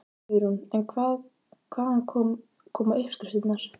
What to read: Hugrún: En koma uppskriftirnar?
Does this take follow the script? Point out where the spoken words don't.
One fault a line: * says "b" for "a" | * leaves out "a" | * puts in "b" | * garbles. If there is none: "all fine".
* puts in "hvaðan"